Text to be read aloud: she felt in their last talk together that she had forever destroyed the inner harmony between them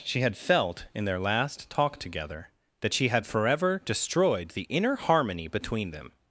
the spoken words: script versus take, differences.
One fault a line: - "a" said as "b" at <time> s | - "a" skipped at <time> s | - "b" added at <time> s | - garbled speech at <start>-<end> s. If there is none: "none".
- "had" added at 0.2 s